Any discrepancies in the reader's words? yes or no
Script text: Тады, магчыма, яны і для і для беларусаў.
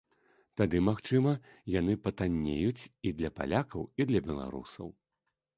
yes